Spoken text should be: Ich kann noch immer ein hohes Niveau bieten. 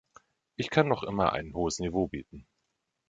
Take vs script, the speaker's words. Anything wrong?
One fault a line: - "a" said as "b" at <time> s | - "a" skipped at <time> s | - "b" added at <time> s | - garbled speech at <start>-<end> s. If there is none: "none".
none